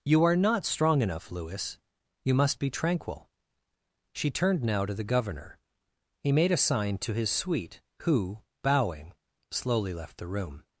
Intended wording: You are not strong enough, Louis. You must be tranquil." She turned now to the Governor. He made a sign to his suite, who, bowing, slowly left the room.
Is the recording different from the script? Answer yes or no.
no